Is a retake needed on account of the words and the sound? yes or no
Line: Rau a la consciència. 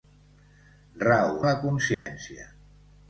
yes